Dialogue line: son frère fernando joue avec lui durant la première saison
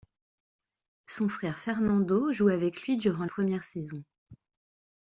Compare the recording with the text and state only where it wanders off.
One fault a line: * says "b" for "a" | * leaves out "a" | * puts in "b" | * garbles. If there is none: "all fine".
* leaves out "la"